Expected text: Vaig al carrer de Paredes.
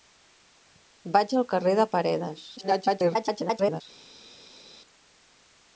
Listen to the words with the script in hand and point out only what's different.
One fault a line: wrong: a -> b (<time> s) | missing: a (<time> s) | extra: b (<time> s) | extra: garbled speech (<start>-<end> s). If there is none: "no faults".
extra: garbled speech (2.6-3.8 s)